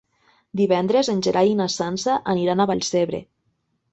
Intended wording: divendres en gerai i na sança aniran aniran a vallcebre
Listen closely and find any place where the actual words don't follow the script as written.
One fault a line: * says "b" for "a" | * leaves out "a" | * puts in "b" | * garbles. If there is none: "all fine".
* leaves out "aniran"